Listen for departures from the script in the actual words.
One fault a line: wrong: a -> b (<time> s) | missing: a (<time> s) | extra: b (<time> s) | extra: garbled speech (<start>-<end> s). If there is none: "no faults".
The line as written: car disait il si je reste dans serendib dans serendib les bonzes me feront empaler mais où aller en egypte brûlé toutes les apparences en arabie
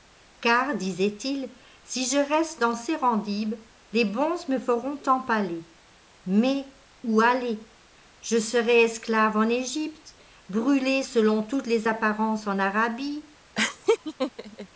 missing: dans serendib (3.5 s)
extra: je serai esclave (8.2 s)
extra: selon (11.0 s)